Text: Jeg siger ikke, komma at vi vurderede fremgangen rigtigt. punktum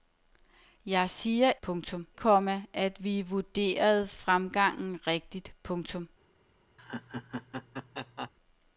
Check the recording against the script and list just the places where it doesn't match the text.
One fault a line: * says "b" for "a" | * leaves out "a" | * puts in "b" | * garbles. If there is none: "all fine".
* says "punktum" for "ikke"